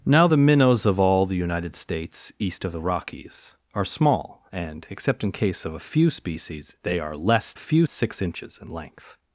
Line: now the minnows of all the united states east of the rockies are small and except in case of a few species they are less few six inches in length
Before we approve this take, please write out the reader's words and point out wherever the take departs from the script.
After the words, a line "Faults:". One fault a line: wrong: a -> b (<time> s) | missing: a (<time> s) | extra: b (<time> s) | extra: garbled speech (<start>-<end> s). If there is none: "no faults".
now the minnows of all the united states east of the rockies are small and except in case of a few species they are less few six inches in length
Faults:
no faults